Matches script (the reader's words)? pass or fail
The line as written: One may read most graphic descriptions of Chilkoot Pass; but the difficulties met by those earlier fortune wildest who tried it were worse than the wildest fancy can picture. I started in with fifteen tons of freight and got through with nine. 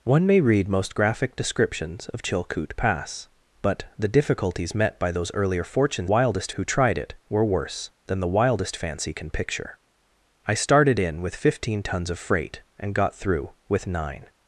pass